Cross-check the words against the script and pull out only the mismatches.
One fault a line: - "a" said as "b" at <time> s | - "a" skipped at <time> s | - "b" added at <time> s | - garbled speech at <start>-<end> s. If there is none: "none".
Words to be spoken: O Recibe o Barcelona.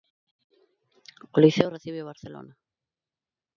- "Liceo" added at 1.4 s